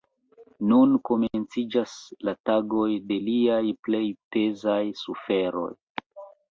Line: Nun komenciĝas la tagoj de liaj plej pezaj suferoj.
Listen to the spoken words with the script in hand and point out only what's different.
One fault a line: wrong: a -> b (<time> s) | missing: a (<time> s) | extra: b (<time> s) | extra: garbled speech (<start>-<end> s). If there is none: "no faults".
no faults